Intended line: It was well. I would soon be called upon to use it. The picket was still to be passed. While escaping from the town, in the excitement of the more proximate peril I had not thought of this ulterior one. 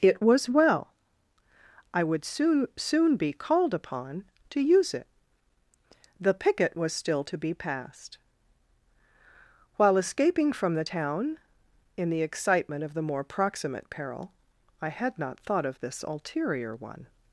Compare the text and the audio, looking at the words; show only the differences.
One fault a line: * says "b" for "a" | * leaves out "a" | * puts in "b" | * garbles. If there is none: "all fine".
* puts in "soon"